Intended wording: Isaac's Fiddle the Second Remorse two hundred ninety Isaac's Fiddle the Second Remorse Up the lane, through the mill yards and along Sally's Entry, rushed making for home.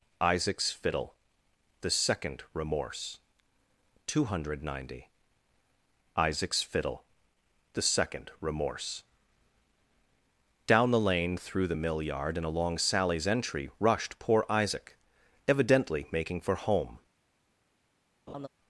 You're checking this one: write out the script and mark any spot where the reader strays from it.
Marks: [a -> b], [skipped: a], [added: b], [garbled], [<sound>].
Isaac's Fiddle the Second Remorse two hundred ninety Isaac's Fiddle the Second Remorse [Up -> Down] the lane, through the mill [yards -> yard] and along Sally's Entry, rushed [added: poor Isaac evidently] making for home. [laugh]